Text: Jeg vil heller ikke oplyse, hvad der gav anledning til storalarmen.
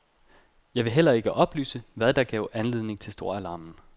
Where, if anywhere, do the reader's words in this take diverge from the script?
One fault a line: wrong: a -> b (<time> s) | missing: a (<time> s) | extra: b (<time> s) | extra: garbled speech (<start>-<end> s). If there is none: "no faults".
no faults